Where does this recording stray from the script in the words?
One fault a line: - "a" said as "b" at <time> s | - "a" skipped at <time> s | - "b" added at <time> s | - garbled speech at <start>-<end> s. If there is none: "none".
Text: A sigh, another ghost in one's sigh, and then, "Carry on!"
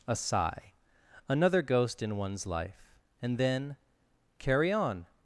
- "sigh" said as "life" at 2.5 s